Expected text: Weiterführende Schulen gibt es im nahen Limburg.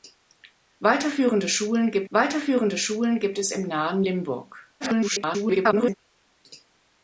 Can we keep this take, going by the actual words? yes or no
no